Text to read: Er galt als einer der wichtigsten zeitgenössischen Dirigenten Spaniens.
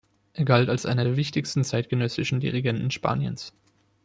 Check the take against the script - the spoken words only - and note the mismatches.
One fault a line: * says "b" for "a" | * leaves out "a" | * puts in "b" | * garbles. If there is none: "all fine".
all fine